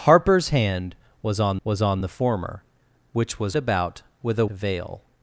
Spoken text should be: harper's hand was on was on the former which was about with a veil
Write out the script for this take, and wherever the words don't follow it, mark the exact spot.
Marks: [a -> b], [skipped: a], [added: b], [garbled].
harper's hand was on was on the former which was about with a veil